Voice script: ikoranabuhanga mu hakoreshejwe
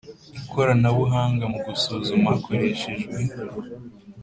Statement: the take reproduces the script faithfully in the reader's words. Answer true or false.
false